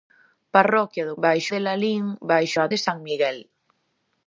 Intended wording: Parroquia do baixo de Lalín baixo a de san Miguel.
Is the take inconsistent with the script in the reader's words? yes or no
no